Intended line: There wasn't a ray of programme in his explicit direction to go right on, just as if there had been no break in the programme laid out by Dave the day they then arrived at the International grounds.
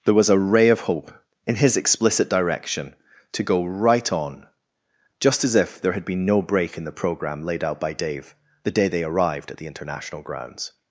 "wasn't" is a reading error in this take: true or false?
true